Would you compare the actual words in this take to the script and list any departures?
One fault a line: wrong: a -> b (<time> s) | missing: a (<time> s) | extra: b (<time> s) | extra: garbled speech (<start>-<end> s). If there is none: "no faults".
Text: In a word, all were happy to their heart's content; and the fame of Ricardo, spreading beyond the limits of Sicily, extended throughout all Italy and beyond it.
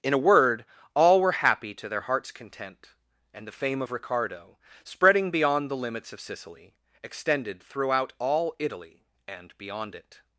no faults